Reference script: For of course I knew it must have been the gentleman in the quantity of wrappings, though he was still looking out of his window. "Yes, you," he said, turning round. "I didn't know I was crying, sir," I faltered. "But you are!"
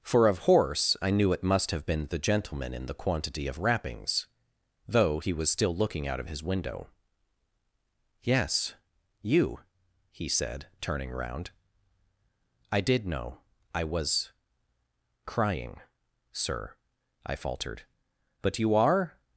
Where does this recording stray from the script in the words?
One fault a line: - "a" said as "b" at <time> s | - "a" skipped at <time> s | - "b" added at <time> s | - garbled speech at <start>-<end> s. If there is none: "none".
- "course" said as "horse" at 0.4 s
- "didn't" said as "did" at 12.8 s